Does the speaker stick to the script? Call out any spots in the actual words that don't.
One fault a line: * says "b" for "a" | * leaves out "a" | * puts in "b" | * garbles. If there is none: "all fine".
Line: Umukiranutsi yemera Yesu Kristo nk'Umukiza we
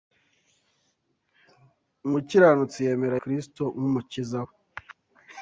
* leaves out "Yesu"